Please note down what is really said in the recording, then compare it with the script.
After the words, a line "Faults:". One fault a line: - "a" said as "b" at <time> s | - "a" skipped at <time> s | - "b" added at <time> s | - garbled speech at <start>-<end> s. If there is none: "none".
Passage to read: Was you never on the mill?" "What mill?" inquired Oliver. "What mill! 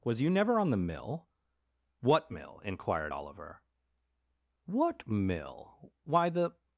Was you never on the mill?" "What mill?" inquired Oliver. "What mill! Why, the
Faults:
- "Why the" added at 6.0 s